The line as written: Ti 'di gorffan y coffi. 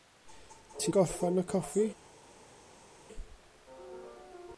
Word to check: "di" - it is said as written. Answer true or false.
false